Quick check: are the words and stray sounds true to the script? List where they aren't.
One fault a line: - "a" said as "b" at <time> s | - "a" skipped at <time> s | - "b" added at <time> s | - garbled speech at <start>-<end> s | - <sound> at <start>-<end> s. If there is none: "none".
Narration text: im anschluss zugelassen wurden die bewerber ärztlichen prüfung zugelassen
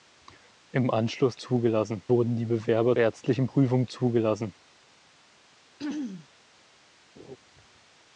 - throat clearing at 5.8-6.3 s
- laugh at 7.1-7.4 s